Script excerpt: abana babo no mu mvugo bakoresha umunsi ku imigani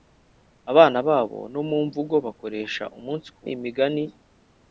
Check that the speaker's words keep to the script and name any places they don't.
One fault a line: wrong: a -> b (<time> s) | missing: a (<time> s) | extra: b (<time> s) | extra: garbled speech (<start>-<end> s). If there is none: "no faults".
no faults